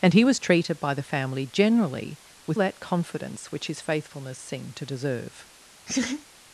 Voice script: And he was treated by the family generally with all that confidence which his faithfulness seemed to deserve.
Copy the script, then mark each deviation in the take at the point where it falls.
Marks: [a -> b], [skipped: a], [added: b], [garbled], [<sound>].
And he was treated by the family generally with [skipped: all] that confidence which his faithfulness seemed to deserve. [laugh]